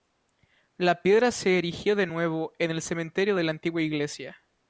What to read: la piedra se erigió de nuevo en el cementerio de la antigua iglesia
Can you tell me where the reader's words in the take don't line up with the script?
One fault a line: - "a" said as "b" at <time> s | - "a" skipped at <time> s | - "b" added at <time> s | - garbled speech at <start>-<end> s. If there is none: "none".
none